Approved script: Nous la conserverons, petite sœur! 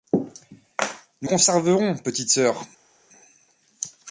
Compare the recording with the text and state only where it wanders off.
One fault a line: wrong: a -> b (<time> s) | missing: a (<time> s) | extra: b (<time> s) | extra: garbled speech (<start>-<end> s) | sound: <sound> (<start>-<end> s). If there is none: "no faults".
missing: la (1.3 s)